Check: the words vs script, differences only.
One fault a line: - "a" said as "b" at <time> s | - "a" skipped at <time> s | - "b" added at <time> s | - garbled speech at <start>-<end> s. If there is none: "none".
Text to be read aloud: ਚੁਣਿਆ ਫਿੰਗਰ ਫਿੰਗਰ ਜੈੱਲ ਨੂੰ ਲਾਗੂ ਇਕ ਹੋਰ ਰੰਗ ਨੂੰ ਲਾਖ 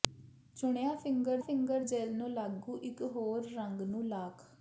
none